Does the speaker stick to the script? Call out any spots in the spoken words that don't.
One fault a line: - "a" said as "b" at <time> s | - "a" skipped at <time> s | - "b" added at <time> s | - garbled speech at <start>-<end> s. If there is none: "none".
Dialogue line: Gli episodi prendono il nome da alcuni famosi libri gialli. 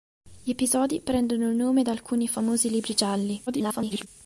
- garbled speech at 3.5-4.1 s